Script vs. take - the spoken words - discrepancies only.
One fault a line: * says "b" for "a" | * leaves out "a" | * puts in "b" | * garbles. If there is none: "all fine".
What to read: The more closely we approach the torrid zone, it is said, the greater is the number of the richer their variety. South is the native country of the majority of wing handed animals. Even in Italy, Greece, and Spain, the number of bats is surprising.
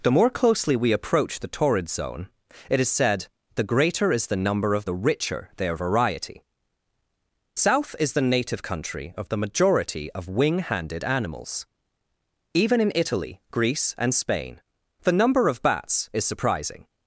all fine